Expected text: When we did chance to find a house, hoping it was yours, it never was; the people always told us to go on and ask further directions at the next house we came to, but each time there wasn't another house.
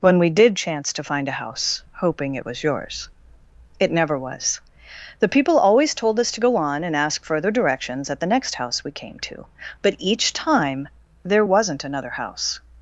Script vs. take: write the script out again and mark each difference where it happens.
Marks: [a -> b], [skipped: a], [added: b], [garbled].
When we did chance to find a house, hoping it was yours, it never was; the people always told us to go on and ask further directions at the next house we came to, but each time there wasn't another house.